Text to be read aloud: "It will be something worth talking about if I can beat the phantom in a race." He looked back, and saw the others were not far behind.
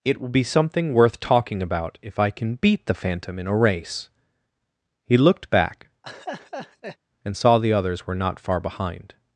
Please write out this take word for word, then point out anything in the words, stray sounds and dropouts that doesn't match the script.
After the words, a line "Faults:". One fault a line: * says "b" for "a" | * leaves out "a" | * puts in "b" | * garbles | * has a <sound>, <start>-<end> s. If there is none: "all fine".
"It will be something worth talking about if I can beat the phantom in a race." He looked back, and saw the others were not far behind.
Faults:
* has a laugh, 6.0-7.0 s